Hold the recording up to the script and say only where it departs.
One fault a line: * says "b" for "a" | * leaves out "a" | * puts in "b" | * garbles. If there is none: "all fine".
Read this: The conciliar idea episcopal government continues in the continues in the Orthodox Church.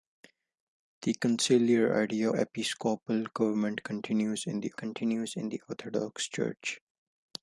all fine